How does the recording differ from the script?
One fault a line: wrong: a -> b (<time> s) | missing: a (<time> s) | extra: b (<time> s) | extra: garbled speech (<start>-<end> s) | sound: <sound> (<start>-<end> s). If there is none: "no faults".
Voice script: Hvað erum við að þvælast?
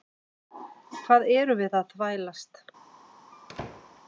sound: squeak (3.3-4.0 s)